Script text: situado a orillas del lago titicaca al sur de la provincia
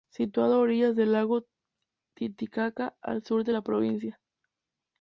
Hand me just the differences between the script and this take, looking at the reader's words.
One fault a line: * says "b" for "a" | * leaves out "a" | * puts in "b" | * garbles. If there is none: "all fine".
all fine